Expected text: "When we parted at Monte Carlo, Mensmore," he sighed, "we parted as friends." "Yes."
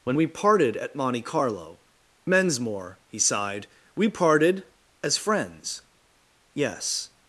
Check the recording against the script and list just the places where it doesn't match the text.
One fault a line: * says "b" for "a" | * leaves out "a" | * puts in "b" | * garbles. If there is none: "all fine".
all fine